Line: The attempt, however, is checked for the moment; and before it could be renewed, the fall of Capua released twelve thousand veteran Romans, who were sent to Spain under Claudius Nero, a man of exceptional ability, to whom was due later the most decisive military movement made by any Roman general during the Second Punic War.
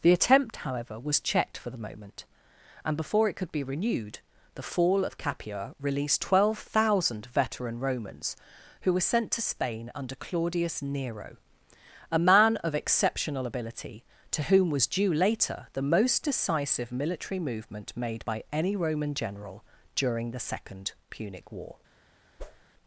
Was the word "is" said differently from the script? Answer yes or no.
yes